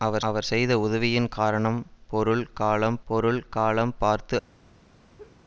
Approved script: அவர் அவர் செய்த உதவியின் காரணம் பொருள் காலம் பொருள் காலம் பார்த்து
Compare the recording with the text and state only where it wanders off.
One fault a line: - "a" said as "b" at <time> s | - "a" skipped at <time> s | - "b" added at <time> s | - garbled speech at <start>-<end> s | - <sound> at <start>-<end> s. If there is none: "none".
- laugh at 5.2-5.4 s